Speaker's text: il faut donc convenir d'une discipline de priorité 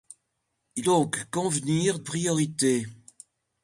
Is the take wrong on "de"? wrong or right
wrong